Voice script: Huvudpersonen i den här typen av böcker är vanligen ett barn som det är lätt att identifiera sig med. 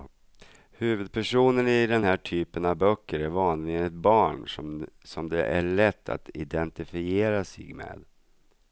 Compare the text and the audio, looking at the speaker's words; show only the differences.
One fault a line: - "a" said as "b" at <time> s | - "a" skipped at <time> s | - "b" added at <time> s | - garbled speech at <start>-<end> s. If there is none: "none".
none